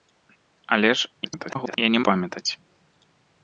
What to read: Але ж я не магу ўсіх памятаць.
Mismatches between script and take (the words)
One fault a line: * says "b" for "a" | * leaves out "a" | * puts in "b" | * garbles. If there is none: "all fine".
* garbles
* leaves out "магу ўсіх"